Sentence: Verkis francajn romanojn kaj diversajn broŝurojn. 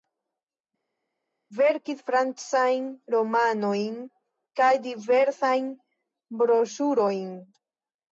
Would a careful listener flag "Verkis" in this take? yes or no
no